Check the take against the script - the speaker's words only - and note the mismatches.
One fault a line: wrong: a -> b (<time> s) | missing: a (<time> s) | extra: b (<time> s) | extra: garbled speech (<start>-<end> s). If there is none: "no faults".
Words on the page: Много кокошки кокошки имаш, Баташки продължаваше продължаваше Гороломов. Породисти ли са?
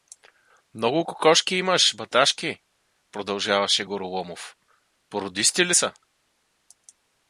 missing: кокошки (1.5 s)
missing: продължаваше (3.8 s)